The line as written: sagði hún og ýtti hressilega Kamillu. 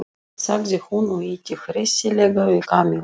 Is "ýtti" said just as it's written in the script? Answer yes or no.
yes